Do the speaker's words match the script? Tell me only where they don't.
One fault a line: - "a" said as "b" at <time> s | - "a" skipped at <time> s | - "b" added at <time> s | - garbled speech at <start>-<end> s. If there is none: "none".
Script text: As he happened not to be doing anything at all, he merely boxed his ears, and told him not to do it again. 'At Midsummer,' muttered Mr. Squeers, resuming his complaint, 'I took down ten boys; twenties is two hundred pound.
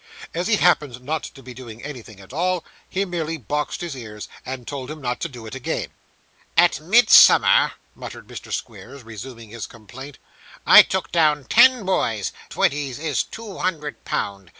none